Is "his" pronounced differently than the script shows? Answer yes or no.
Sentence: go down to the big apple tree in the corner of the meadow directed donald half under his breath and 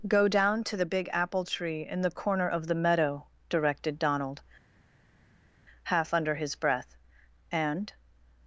no